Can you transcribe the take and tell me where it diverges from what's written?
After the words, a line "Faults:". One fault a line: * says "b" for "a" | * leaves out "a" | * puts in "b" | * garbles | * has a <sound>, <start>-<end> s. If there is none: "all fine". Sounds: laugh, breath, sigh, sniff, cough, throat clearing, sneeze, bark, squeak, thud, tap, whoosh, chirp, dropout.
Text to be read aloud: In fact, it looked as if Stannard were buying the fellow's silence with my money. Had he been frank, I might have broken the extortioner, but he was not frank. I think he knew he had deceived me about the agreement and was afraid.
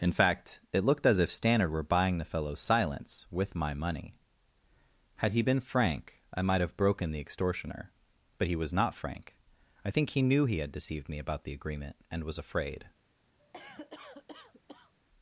In fact, it looked as if Stannard were buying the fellow's silence with my money. Had he been frank, I might have broken the extortioner, but he was not frank. I think he knew he had deceived me about the agreement and was afraid.
Faults:
* has a cough, 13.4-14.9 s